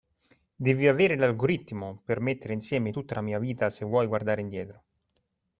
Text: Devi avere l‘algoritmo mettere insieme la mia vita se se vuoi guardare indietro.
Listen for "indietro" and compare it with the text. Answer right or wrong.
right